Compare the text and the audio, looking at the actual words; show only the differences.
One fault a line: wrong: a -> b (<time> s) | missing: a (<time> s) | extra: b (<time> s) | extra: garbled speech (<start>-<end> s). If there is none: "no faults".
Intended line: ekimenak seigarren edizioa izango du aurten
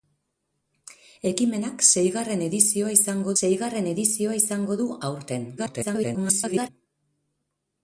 extra: seigarren edizioa izango (3.4 s)
extra: garbled speech (5.6-6.7 s)